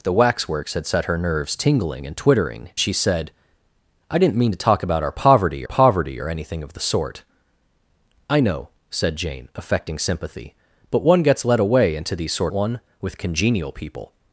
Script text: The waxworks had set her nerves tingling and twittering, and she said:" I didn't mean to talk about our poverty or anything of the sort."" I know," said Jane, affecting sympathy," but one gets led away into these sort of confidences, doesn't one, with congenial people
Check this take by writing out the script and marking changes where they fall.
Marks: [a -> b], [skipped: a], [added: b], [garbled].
The waxworks had set her nerves tingling and twittering, [skipped: and] she said:" I didn't mean to talk about our poverty [added: poverty] or anything of the sort."" I know," said Jane, affecting sympathy," but one gets led away into these sort [skipped: of confidences, doesn't] one, with congenial people